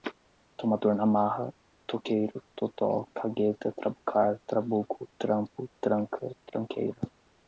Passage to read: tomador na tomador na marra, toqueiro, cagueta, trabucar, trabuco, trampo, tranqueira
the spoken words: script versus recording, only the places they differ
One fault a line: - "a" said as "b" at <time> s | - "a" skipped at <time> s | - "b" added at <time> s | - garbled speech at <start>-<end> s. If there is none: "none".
- "tomador na" skipped at 1.1 s
- "totó" added at 2.5 s
- "tranca" added at 5.8 s